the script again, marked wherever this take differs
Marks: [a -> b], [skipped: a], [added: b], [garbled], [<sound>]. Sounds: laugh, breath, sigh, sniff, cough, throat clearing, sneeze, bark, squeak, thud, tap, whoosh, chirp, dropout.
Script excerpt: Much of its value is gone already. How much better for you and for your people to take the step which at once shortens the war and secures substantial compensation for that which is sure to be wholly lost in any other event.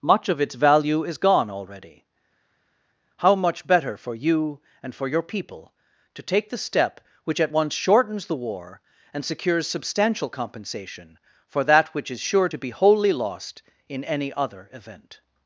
Much of its value is gone already. How much better for you and for your people to take the step which at once shortens the war and secures substantial compensation for that which is sure to be wholly lost in any other event.